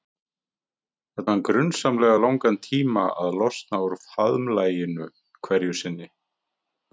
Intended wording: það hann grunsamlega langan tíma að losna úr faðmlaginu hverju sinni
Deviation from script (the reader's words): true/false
false